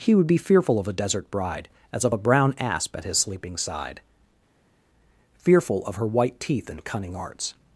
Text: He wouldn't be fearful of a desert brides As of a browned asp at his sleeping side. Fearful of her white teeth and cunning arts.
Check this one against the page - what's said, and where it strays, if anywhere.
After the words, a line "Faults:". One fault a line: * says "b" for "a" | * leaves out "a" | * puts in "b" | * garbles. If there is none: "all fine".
He would be fearful of a desert bride As of a brown asp at his sleeping side. Fearful of her white teeth and cunning arts.
Faults:
* says "would" for "wouldn't"
* says "bride" for "brides"
* says "brown" for "browned"